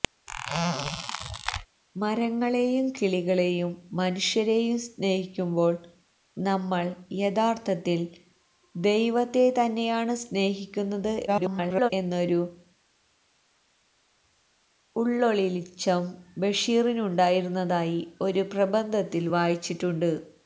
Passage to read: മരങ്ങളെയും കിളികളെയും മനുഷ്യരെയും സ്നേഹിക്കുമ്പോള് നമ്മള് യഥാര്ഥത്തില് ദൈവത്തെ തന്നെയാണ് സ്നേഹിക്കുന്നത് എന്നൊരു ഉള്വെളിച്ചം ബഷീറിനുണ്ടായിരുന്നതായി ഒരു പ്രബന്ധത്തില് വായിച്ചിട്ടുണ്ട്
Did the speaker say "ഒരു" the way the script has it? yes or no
yes